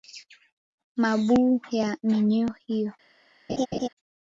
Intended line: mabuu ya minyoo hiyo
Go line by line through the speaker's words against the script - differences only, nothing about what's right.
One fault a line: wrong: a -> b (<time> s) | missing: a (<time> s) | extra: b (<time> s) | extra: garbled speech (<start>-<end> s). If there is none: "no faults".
no faults